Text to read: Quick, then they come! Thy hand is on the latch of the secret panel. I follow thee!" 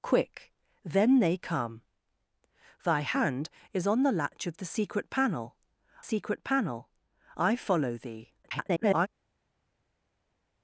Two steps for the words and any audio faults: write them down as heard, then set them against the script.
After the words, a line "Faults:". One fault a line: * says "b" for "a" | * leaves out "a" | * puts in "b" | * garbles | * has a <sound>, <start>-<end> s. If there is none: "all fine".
Quick, then they come! Thy hand is on the latch of the secret panel secret panel. I follow thee!" [garbled]
Faults:
* puts in "secret panel"
* garbles